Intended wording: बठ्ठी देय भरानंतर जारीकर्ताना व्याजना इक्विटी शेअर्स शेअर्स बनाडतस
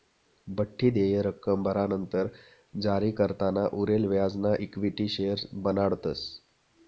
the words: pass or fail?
fail